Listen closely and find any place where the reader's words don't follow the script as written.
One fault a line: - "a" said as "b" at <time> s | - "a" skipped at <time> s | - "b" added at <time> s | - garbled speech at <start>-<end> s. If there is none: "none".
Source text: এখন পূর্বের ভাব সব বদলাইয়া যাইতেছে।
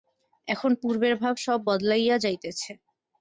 none